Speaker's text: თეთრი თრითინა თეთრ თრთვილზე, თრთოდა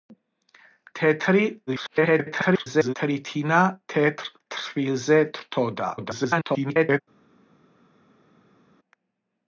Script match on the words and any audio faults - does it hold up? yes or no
no